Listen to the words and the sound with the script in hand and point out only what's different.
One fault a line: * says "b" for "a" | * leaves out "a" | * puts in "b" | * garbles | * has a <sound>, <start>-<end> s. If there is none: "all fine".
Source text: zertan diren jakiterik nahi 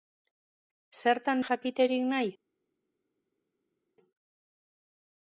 * leaves out "diren"